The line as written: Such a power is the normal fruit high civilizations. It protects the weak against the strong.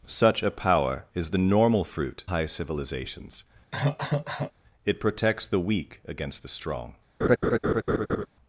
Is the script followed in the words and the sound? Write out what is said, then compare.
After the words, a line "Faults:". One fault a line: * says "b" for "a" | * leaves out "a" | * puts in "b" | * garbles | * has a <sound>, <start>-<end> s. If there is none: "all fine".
Such a power is the normal fruit high civilizations. It protects the weak against the strong.
Faults:
* has a cough, 3.7-4.5 s
* has a laugh, 7.2-8.3 s